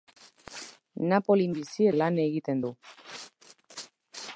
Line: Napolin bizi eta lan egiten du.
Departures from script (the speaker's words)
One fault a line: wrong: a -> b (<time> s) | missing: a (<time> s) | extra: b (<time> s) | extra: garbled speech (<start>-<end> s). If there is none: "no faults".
missing: eta (1.9 s)